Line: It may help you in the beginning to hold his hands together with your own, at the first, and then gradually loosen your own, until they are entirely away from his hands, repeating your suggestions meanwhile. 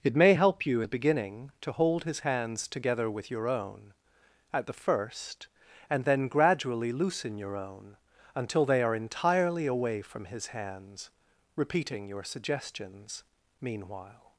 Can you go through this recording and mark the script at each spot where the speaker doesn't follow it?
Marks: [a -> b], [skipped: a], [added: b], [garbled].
It may help you [skipped: in] the beginning to hold his hands together with your own, at the first, and then gradually loosen your own, until they are entirely away from his hands, repeating your suggestions meanwhile.